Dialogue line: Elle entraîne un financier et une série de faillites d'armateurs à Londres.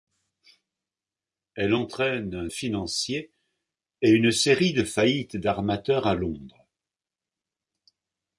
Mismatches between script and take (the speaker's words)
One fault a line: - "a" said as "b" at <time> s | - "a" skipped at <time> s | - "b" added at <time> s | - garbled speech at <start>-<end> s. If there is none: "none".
none